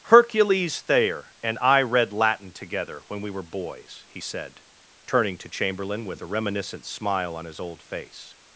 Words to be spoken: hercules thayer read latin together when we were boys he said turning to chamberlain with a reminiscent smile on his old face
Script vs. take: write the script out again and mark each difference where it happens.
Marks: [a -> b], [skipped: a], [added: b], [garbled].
hercules thayer [added: and i] read latin together when we were boys he said turning to chamberlain with a reminiscent smile on his old face